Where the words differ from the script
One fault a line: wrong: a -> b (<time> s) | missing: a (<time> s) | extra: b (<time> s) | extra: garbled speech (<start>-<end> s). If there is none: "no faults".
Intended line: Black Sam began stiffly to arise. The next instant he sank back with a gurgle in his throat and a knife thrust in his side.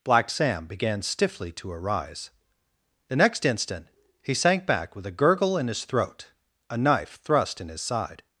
missing: and (6.3 s)